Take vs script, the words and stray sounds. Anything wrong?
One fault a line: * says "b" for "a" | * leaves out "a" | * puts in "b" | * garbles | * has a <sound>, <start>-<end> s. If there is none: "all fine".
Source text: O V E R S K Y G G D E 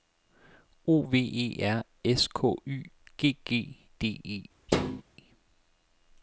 * has a thud, 4.7-5.0 s